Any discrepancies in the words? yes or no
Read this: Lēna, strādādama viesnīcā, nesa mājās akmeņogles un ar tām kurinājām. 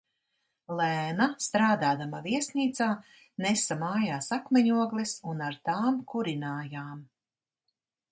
no